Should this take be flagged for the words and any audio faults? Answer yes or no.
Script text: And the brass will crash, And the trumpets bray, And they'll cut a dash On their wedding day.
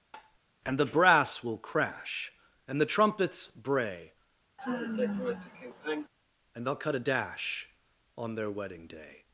yes